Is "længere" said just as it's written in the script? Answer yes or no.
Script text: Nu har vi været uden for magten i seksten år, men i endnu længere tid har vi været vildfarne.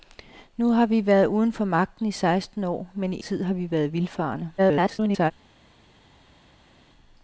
no